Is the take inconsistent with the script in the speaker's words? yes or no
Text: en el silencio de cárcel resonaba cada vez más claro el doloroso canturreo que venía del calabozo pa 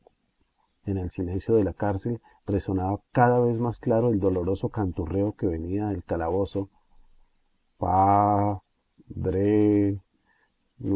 yes